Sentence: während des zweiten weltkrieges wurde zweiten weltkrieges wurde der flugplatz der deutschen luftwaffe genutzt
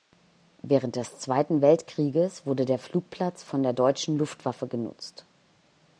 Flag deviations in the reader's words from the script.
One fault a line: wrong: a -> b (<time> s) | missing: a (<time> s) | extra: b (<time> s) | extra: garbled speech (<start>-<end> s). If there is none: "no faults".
missing: zweiten weltkrieges wurde (2.6 s)
extra: von (3.4 s)